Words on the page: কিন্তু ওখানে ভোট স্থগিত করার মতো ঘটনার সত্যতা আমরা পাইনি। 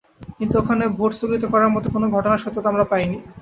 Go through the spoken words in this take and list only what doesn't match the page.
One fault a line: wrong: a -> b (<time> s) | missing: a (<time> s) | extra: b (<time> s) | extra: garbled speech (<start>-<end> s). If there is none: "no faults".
extra: কোনো (1.9 s)